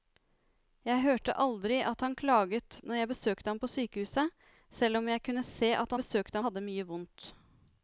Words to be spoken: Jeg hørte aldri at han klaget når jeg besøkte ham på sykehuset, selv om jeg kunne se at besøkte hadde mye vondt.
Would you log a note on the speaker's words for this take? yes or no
no